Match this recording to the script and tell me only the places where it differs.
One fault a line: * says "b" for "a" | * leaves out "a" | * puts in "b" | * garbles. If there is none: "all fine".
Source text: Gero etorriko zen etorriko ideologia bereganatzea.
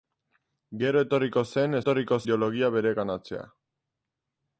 all fine